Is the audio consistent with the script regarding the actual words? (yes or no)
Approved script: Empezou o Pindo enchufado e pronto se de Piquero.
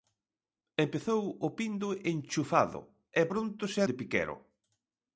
yes